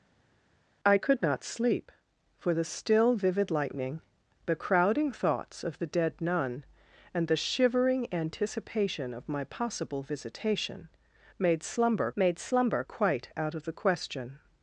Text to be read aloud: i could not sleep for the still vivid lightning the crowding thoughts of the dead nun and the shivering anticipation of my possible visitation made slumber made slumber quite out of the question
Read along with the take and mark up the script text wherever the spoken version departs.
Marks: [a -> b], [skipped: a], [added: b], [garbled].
i could not sleep for the still vivid lightning the crowding thoughts of the dead nun and the shivering anticipation of my possible visitation made slumber made slumber quite out of the question